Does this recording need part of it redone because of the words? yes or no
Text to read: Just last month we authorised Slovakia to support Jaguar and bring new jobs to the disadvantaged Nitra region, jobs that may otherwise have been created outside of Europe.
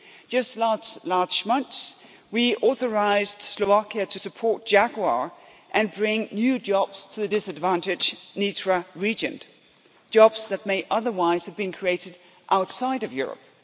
no